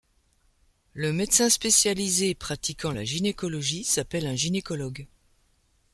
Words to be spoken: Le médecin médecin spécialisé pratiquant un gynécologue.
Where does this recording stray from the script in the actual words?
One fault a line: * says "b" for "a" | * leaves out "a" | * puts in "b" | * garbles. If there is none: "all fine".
* leaves out "médecin"
* puts in "la gynécologie s'appelle"